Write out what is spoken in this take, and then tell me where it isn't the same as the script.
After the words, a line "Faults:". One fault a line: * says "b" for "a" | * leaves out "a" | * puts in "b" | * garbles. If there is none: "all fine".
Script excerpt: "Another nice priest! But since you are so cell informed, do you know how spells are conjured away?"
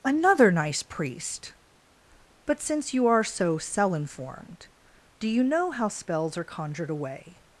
"Another nice priest! But since you are so cell informed, do you know how spells are conjured away?"
Faults:
all fine